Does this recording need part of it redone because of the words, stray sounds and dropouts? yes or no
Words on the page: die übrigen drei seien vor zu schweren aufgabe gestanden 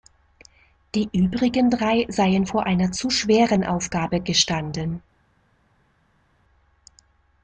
yes